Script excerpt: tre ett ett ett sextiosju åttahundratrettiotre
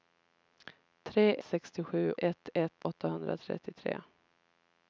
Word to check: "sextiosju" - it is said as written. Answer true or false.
false